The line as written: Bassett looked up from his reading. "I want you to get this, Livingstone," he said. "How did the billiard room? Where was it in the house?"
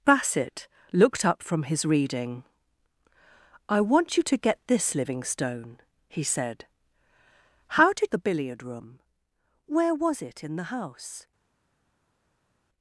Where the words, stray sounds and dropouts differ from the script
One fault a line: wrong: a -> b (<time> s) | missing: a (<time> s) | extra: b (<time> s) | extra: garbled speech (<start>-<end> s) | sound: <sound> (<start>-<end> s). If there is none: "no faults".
no faults